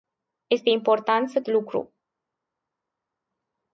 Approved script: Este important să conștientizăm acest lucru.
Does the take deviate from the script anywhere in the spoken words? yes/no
yes